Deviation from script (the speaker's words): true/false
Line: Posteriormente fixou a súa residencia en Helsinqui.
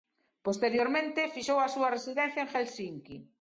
false